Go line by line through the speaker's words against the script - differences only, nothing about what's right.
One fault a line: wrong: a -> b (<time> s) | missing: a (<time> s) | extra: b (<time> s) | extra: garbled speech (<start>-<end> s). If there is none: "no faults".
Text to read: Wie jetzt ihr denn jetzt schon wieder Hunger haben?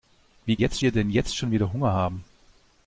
no faults